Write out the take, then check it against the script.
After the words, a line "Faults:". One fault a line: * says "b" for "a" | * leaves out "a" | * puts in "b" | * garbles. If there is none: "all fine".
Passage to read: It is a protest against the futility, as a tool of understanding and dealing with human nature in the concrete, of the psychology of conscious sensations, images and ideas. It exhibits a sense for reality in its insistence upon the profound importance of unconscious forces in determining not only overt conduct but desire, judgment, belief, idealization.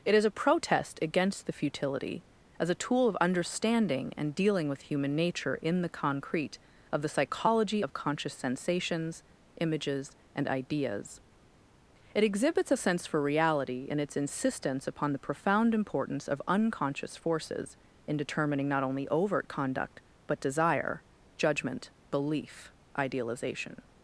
It is a protest against the futility, as a tool of understanding and dealing with human nature in the concrete, of the psychology of conscious sensations, images and ideas. It exhibits a sense for reality in its insistence upon the profound importance of unconscious forces in determining not only overt conduct but desire, judgment, belief, idealization.
Faults:
all fine